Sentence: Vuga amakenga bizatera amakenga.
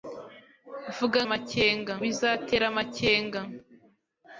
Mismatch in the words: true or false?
false